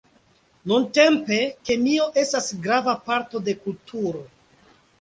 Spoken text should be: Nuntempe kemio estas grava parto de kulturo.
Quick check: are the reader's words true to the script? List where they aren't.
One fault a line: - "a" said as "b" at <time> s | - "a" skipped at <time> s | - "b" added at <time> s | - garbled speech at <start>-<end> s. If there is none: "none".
none